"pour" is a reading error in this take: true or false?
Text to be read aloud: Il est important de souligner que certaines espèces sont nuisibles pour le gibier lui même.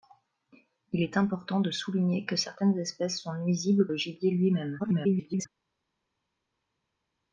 true